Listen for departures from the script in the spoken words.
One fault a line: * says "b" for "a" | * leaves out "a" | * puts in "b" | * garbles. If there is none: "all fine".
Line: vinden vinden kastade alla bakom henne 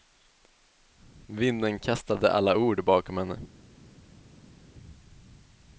* leaves out "vinden"
* puts in "ord"